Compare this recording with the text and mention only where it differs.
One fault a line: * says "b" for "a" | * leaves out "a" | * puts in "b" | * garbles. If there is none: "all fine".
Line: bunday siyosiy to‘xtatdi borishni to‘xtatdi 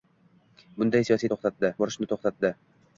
all fine